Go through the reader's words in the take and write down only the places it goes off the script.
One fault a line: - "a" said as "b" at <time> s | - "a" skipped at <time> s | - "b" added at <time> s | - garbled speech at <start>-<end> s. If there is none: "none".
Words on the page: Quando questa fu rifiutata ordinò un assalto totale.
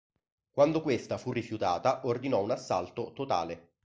none